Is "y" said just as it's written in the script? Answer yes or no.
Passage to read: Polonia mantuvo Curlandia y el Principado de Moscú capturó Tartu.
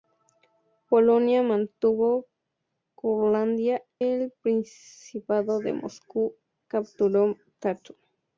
no